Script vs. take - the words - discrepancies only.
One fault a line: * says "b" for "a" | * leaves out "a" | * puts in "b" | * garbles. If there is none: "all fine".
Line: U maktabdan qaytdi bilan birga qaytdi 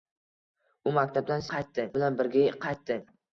all fine